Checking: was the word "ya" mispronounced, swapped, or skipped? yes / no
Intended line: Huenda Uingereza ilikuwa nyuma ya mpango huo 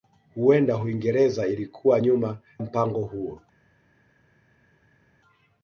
yes